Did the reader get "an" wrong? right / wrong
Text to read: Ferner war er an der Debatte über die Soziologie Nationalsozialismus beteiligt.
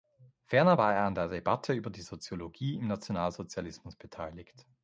right